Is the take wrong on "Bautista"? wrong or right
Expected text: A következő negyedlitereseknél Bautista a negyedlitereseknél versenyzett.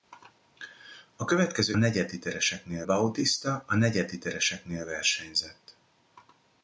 right